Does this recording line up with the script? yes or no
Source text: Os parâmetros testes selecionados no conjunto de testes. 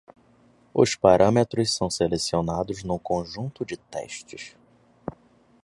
no